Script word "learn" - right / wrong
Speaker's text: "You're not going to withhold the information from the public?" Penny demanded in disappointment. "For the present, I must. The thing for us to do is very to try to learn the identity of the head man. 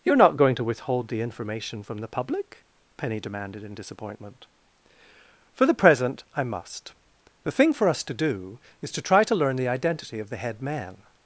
right